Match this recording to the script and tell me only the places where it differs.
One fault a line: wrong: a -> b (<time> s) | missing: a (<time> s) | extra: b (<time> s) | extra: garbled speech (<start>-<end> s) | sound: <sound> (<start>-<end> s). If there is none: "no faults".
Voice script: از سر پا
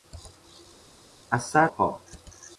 no faults